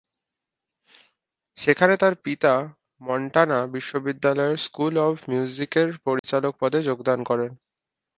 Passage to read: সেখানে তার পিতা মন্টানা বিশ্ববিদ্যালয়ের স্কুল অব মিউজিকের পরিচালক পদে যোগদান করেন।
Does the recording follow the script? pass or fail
pass